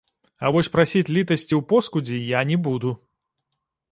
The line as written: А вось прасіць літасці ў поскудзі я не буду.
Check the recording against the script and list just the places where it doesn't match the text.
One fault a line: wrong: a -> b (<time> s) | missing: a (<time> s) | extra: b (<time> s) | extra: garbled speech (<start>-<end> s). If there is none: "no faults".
no faults